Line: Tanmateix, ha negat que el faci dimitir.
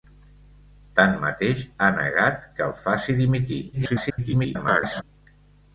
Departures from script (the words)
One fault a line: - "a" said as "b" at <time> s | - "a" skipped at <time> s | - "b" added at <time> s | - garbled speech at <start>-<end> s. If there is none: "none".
- garbled speech at 3.7-5.0 s